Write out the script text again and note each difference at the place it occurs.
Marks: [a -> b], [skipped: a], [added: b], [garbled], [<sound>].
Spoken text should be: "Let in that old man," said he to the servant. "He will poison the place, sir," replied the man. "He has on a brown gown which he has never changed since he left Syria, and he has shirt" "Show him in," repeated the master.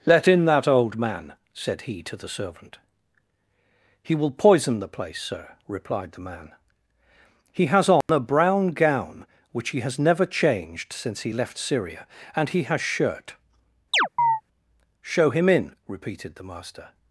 "Let in that old man," said he to the servant. "He will poison the place, sir," replied the man. "He has on [dropout] a brown gown which he has never changed since he left Syria, and he has shirt" [chirp] "Show him in," repeated the master.